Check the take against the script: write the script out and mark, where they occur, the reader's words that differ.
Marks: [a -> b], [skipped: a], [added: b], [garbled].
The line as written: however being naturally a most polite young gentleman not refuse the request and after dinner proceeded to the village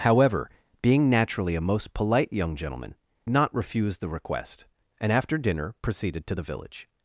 however being naturally a most polite young gentleman not refuse the request and after dinner proceeded to the village